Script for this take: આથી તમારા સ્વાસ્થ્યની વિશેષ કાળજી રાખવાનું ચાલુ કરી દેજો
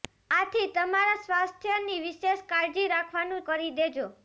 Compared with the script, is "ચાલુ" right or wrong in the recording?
wrong